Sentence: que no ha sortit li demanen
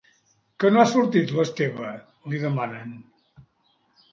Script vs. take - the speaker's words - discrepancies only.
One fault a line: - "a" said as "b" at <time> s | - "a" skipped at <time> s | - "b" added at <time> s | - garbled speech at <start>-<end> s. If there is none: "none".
- "l'esteve" added at 1.4 s